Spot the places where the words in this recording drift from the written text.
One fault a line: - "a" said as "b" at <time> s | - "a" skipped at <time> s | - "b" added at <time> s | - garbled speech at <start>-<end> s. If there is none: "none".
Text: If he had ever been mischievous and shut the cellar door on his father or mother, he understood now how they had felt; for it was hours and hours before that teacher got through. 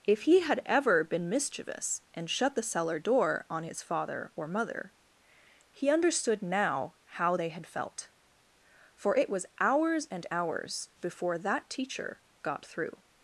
none